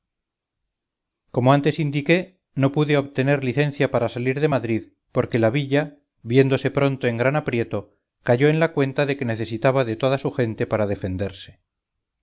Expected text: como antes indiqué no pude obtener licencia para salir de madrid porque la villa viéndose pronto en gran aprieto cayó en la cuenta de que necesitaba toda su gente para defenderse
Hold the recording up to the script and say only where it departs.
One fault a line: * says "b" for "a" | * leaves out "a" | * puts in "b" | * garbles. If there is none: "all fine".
* puts in "de"